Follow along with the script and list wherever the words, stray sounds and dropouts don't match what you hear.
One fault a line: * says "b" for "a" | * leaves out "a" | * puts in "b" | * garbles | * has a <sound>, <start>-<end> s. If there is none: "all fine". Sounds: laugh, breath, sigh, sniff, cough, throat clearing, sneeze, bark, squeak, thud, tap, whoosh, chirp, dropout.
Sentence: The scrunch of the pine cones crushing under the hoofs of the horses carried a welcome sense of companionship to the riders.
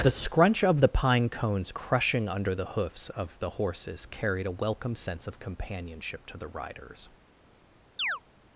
* has a chirp, 8.0-8.2 s